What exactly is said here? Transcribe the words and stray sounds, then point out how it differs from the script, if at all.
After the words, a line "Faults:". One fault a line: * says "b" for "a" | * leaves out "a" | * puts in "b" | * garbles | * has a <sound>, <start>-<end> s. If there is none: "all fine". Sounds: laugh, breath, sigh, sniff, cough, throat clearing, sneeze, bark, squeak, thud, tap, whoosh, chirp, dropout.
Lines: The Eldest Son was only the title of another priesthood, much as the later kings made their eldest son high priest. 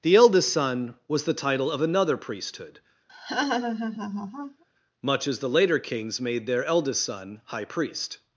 The Eldest Son was the title of another priesthood, much as the later kings made their eldest son high priest.
Faults:
* leaves out "only"
* has a laugh, 3.1-4.6 s